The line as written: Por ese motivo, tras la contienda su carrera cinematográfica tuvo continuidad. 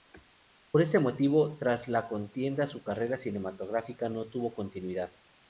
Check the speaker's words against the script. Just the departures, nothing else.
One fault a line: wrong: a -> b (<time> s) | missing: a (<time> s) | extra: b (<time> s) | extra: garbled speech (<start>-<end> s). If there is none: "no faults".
wrong: ese -> este (0.8 s)
extra: no (4.1 s)